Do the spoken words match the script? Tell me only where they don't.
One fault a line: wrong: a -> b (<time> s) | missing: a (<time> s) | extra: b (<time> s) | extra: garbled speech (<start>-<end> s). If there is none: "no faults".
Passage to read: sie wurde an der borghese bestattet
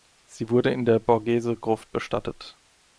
wrong: an -> in (0.7 s)
extra: gruft (1.6 s)